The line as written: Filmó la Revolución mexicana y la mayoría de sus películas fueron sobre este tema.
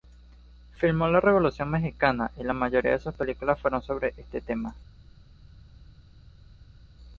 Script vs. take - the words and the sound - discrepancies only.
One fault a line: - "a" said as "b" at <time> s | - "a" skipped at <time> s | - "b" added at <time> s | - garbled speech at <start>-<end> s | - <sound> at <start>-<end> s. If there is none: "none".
none